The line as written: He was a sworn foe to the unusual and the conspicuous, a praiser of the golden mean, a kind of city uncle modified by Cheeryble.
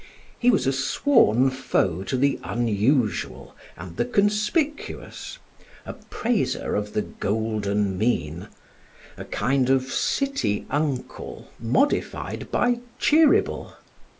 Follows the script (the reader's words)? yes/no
yes